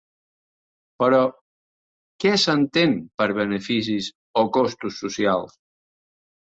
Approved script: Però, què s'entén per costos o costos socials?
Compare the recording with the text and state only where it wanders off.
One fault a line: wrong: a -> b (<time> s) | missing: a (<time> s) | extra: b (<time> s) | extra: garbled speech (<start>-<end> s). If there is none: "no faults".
wrong: costos -> beneficis (3.4 s)